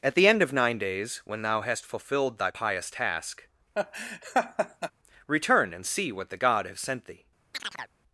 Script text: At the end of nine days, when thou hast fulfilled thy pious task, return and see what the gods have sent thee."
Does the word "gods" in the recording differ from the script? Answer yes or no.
yes